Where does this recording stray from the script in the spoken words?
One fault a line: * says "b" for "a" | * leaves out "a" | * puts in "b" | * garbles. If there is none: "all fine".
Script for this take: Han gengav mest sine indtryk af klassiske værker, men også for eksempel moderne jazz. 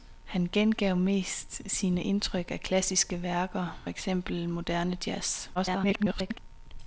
* leaves out "men også for"
* garbles